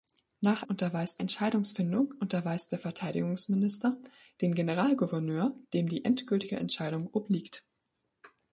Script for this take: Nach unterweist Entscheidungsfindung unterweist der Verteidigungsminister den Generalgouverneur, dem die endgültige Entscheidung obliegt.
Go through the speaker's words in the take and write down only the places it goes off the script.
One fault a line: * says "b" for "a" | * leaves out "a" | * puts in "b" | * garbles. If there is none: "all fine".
all fine